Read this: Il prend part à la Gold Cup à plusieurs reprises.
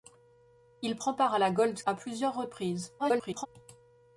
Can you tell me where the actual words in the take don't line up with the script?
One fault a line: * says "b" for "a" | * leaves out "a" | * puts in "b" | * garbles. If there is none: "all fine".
* leaves out "Cup"
* garbles